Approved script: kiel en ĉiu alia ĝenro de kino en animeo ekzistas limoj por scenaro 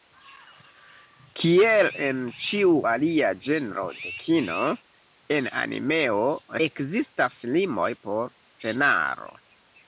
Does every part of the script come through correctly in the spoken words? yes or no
yes